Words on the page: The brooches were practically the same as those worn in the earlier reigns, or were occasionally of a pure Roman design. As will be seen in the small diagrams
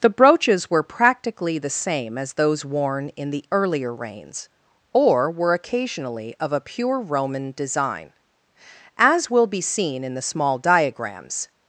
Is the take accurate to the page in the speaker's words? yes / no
yes